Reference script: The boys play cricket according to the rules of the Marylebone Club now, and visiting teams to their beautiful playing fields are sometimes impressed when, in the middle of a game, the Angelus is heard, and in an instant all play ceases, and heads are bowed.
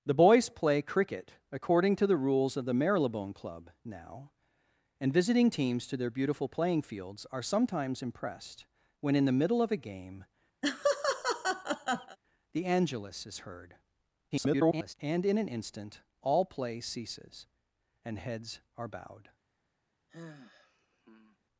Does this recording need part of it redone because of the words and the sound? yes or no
yes